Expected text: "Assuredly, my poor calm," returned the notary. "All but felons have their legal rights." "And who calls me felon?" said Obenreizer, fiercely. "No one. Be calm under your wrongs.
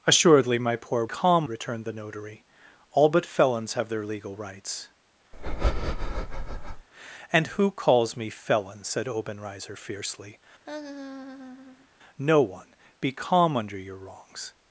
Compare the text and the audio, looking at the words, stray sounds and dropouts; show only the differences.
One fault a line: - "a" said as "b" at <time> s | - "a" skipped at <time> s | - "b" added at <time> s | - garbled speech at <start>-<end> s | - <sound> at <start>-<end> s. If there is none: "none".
- breath at 5.3-6.9 s
- laugh at 10.6-11.9 s